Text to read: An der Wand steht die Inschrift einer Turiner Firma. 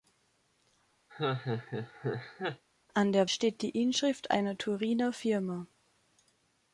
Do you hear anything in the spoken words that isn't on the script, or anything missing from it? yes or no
yes